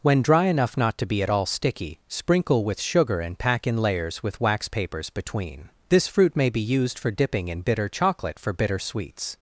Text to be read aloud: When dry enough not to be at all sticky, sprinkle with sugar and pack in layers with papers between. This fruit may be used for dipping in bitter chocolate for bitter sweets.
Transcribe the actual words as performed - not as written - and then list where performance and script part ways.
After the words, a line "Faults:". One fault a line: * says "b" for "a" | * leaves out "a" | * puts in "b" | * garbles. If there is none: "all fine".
When dry enough not to be at all sticky, sprinkle with sugar and pack in layers with wax papers between. This fruit may be used for dipping in bitter chocolate for bitter sweets.
Faults:
* puts in "wax"